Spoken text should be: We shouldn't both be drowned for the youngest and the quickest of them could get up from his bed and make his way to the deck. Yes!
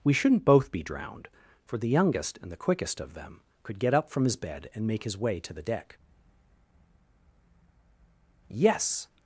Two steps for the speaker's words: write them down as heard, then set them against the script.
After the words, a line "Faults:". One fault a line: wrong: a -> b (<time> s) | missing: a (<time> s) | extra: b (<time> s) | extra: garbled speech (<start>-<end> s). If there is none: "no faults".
We shouldn't both be drowned for the youngest and the quickest of them could get up from his bed and make his way to the deck. Yes!
Faults:
no faults